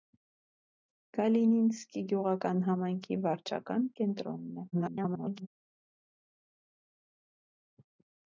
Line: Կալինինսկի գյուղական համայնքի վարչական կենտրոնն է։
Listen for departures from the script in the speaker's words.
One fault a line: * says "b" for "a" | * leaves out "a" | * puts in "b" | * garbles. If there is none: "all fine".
* garbles